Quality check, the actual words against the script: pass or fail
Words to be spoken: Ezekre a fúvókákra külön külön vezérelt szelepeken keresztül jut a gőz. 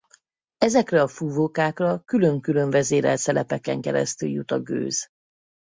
pass